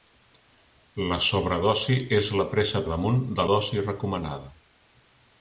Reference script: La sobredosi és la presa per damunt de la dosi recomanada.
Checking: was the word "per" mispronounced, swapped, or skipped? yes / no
yes